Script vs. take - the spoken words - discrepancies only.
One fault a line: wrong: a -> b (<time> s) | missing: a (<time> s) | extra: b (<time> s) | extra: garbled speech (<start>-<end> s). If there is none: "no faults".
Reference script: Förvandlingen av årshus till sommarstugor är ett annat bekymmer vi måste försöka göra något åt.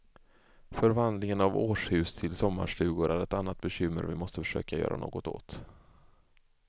no faults